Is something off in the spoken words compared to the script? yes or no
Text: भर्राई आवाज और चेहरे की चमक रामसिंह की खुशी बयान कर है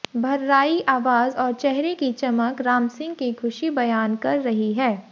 yes